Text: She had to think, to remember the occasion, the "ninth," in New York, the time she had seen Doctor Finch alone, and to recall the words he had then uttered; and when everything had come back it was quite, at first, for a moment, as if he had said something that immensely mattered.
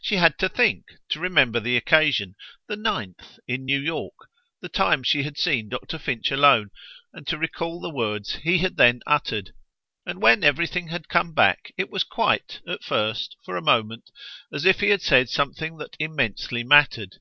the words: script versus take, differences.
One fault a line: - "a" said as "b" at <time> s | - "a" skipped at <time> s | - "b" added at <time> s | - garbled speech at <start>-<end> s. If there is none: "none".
none